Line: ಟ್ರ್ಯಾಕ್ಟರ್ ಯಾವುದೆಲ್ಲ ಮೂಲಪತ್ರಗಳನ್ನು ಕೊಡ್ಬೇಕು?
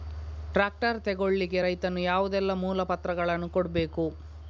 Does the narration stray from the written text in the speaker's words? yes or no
yes